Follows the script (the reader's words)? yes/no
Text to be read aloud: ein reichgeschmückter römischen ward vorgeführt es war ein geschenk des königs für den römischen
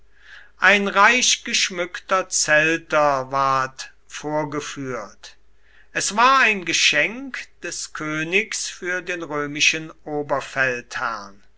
no